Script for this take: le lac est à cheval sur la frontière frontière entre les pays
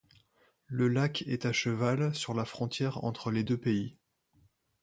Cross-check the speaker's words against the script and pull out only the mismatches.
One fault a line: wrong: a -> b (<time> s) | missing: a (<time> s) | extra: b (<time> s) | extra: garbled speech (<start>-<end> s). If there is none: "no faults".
missing: frontière (3.0 s)
extra: deux (3.4 s)